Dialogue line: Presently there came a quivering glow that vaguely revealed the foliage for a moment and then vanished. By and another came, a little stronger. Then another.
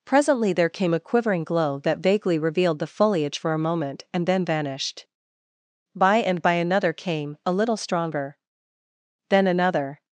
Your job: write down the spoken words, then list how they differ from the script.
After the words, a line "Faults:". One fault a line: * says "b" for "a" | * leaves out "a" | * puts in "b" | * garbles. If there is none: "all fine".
Presently there came a quivering glow that vaguely revealed the foliage for a moment and then vanished. By and by another came, a little stronger. Then another.
Faults:
* puts in "by"